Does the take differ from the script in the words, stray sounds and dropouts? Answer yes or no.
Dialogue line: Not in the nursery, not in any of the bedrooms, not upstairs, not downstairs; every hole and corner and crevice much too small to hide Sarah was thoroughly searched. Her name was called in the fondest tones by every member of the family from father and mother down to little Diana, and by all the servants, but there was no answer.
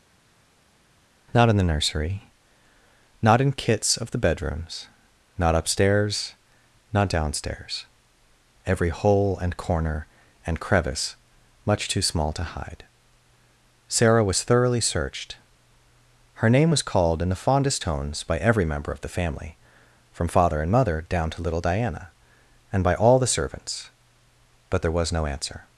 yes